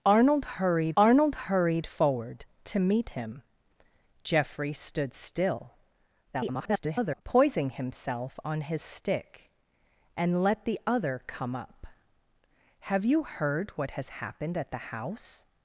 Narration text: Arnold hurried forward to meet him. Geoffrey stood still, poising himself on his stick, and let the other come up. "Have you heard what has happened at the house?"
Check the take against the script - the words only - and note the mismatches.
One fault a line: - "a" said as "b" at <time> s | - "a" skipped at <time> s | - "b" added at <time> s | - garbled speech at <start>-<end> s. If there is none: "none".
- "arnold hurried" added at 1.0 s
- garbled speech at 6.3-7.2 s